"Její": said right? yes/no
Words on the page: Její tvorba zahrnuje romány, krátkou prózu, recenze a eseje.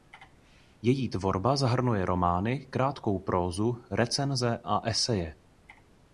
yes